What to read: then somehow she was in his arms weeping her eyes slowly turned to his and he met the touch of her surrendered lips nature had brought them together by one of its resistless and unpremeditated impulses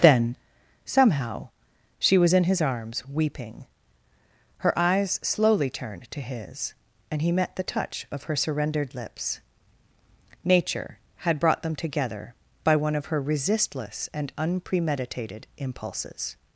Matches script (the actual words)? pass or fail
fail